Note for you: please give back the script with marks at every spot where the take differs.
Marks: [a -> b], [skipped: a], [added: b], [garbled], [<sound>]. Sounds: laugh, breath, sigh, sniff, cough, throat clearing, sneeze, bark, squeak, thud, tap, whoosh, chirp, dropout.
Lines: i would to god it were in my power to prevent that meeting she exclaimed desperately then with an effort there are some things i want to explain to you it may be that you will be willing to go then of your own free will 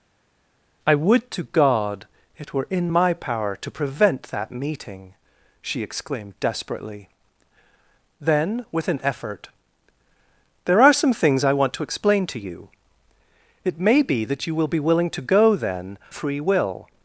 i would to god it were in my power to prevent that meeting she exclaimed desperately then with an effort there are some things i want to explain to you it may be that you will be willing to go then [skipped: of your own] free will